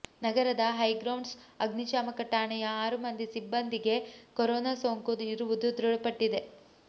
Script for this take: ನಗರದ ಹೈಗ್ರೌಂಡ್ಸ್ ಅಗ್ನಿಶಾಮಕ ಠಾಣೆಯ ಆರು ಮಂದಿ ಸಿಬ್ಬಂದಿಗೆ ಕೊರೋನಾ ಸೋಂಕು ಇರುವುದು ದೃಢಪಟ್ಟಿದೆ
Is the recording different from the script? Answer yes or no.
no